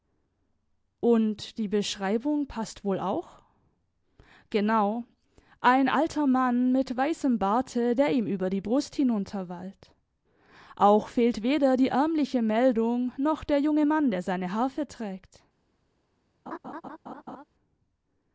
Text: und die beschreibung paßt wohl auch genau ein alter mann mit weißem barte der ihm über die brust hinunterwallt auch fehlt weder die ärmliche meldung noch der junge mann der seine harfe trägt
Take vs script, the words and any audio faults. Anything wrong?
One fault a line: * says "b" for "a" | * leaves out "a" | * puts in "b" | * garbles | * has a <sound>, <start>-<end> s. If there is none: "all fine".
* has a laugh, 16.5-17.4 s